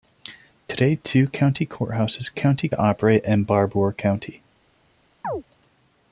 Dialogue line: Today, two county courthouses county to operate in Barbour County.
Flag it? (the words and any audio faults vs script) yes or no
yes